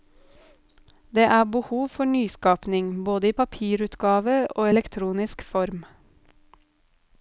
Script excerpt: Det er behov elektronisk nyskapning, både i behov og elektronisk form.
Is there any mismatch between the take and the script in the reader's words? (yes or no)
yes